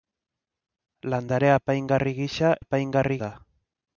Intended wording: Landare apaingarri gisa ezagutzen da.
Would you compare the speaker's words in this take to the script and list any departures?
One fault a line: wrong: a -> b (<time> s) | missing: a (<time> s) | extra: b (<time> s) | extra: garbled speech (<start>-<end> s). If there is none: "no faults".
wrong: ezagutzen -> apaingarri (2.6 s)